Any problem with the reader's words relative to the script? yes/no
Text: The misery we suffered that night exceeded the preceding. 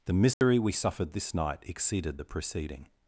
yes